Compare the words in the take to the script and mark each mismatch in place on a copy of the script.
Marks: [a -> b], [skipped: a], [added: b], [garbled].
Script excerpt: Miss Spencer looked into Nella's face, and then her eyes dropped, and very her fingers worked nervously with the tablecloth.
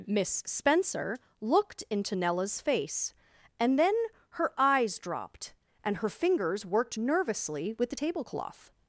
Miss Spencer looked into Nella's face, and then her eyes dropped, and [skipped: very] her fingers worked nervously with the tablecloth.